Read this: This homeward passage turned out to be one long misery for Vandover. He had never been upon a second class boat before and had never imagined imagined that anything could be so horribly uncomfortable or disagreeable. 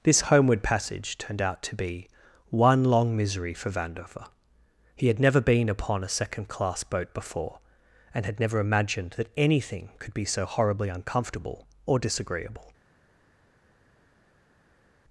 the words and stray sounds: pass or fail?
fail